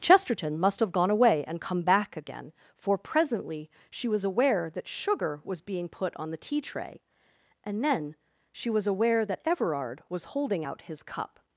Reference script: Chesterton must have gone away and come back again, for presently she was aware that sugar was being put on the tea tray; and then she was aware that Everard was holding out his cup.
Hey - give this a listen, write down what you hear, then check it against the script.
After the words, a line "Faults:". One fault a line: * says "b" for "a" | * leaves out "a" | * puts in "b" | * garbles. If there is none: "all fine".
Chesterton must have gone away and come back again, for presently she was aware that sugar was being put on the tea tray; and then she was aware that Everard was holding out his cup.
Faults:
all fine